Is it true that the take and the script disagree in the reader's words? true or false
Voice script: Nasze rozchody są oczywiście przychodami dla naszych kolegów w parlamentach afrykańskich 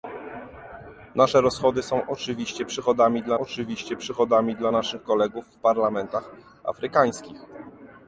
true